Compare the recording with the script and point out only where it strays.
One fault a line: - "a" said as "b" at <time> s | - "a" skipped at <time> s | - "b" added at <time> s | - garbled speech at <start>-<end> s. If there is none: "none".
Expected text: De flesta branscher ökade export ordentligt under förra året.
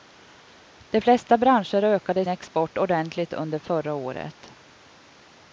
none